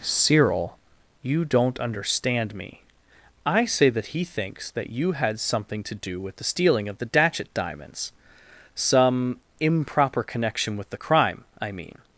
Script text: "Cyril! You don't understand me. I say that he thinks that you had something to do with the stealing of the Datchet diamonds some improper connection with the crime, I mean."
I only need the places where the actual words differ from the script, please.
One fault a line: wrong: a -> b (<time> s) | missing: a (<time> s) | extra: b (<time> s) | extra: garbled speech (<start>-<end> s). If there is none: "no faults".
no faults